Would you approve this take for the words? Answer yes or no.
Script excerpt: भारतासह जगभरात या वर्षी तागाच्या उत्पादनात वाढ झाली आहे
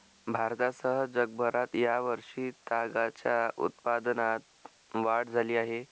yes